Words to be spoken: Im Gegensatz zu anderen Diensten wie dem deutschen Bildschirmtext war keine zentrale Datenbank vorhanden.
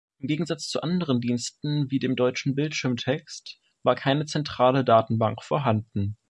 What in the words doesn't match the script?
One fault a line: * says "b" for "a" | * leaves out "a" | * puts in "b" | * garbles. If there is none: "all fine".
all fine